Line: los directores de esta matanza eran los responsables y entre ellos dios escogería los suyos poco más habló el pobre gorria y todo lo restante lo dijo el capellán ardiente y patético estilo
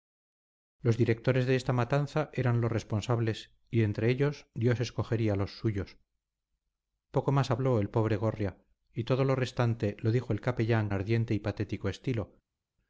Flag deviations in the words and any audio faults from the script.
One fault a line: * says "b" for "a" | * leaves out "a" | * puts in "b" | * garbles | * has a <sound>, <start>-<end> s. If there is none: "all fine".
all fine